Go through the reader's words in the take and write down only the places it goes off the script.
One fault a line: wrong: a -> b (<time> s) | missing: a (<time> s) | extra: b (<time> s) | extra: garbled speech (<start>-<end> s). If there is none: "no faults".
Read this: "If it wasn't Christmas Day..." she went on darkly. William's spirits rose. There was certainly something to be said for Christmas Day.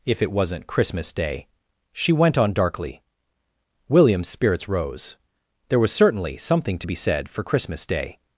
no faults